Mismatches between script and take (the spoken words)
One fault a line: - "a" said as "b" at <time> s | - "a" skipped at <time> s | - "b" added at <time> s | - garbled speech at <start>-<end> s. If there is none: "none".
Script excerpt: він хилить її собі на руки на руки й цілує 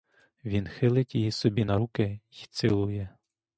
- "на руки" skipped at 2.2 s